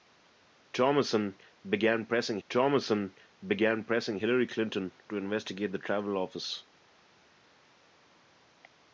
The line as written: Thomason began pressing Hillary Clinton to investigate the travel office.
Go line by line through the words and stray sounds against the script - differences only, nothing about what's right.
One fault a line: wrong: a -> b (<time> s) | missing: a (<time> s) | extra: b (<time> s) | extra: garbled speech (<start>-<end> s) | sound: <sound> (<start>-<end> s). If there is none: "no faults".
extra: thomason began pressing (2.5 s)